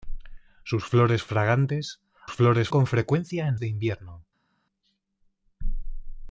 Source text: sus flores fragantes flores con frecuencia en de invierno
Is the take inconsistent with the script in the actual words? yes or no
no